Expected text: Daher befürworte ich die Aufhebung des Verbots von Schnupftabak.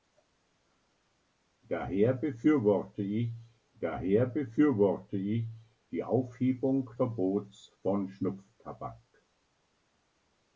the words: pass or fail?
fail